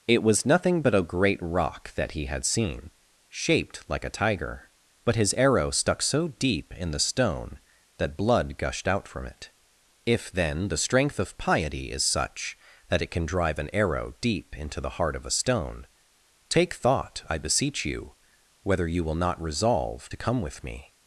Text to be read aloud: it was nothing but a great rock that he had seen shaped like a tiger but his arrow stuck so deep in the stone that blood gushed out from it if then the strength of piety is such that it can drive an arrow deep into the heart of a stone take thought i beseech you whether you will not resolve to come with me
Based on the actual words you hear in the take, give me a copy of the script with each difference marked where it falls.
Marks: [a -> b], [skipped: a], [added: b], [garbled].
it was nothing but a great rock that he had seen shaped like a tiger but his arrow stuck so deep in the stone that blood gushed out from it if then the strength of piety is such that it can drive an arrow deep into the heart of a stone take thought i beseech you whether you will not resolve to come with me